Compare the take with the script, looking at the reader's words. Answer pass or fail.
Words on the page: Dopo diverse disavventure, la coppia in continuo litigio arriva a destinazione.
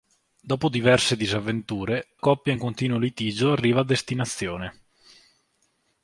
fail